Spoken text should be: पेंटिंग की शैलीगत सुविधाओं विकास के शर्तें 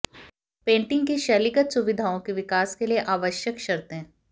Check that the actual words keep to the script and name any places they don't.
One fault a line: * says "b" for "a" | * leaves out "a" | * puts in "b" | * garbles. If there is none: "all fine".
* puts in "के"
* puts in "लिए आवश्यक"